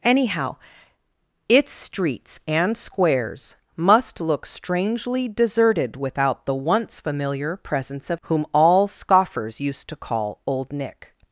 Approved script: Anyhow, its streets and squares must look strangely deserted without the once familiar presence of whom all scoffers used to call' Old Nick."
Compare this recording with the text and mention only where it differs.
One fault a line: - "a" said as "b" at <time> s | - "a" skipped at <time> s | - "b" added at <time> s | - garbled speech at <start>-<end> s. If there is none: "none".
none